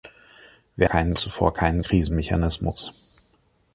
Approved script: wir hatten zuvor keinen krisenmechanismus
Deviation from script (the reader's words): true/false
true